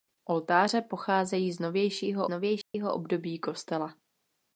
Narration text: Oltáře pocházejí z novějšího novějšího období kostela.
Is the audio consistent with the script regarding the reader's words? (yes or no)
yes